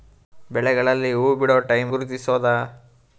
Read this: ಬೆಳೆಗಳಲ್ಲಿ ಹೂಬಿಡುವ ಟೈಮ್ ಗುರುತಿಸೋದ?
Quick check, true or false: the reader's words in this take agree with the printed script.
true